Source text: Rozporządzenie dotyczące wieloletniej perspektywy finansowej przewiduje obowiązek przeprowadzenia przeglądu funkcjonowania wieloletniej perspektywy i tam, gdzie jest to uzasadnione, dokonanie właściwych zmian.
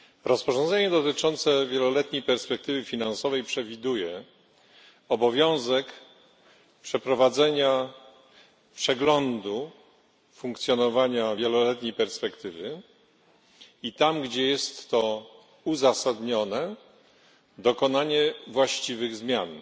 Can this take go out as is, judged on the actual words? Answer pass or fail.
pass